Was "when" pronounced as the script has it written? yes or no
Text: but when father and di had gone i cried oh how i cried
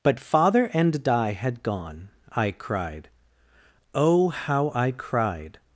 no